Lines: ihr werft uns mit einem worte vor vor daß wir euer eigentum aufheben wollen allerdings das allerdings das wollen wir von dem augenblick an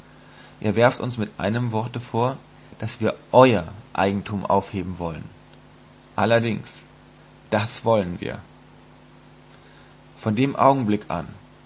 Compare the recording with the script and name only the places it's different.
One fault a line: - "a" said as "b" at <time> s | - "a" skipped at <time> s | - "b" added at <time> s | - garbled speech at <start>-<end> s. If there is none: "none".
- "vor" skipped at 2.4 s
- "allerdings das" skipped at 7.8 s